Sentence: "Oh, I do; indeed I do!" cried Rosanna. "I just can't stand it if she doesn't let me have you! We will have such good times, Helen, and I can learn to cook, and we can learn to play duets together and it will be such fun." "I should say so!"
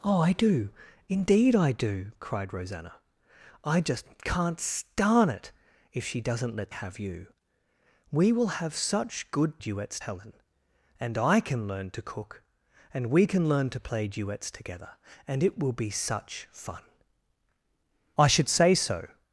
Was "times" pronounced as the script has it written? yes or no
no